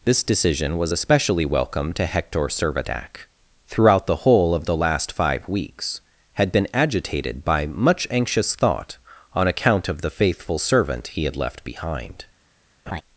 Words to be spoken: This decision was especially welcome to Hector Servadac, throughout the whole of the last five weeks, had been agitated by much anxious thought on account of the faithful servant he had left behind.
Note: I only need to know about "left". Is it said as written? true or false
true